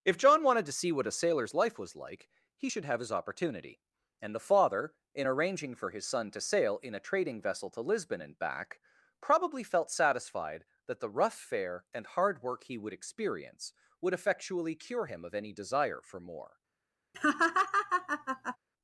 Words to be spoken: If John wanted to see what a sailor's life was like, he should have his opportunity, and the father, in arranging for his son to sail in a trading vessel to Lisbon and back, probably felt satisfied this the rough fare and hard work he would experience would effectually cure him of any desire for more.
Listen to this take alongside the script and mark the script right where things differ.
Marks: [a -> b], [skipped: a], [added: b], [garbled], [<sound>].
If John wanted to see what a sailor's life was like, he should have his opportunity, and the father, in arranging for his son to sail in a trading vessel to Lisbon and back, probably felt satisfied [this -> that] the rough fare and hard work he would experience would effectually cure him of any desire for more. [laugh]